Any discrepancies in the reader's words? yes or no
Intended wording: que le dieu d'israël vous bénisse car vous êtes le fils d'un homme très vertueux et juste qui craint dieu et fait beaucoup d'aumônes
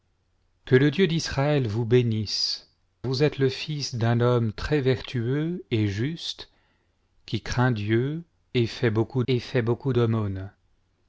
yes